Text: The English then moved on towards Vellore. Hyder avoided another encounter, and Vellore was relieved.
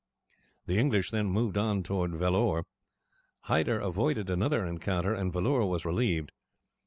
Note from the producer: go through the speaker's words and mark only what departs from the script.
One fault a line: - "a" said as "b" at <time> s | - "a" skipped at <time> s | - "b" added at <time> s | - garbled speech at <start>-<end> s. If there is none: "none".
none